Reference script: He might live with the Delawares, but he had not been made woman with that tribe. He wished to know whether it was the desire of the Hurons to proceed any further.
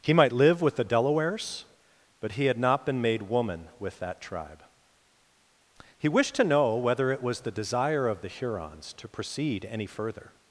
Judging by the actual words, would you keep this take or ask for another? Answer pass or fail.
pass